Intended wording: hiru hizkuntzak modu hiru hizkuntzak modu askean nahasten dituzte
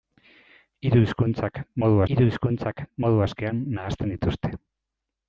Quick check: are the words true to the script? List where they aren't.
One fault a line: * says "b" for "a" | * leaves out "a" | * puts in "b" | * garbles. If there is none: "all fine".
all fine